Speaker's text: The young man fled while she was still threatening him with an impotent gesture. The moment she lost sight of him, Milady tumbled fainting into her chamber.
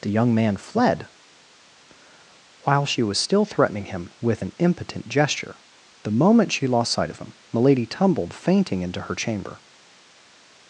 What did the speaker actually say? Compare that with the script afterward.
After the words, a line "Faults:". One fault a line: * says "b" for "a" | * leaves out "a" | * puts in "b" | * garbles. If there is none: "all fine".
The young man fled while she was still threatening him with an impotent gesture. The moment she lost sight of him, Milady tumbled fainting into her chamber.
Faults:
all fine